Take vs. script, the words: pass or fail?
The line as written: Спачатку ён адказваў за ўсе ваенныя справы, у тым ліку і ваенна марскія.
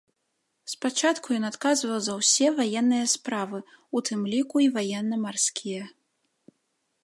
pass